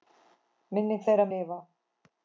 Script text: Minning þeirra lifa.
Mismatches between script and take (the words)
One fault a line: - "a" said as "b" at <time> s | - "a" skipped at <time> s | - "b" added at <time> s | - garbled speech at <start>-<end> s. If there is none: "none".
none